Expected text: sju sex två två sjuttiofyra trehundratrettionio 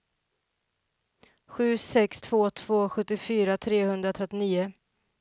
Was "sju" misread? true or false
false